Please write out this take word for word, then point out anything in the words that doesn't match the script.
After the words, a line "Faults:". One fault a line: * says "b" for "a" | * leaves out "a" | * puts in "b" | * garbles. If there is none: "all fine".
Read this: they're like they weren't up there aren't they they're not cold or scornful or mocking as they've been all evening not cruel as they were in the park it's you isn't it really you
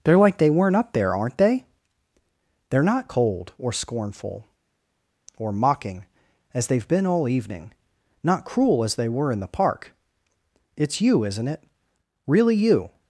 they're like they weren't up there aren't they they're not cold or scornful or mocking as they've been all evening not cruel as they were in the park it's you isn't it really you
Faults:
all fine